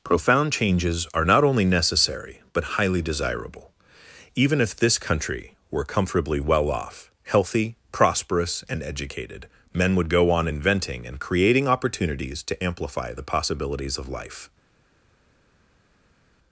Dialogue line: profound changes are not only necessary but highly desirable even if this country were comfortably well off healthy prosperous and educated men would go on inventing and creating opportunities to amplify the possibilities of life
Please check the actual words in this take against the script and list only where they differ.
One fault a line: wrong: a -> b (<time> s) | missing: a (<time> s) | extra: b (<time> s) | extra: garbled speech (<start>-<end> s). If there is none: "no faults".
no faults